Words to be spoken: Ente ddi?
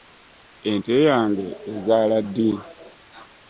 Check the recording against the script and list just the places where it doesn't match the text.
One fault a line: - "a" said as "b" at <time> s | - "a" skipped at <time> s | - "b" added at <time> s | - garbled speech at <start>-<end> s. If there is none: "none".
- "yange ezaala" added at 1.1 s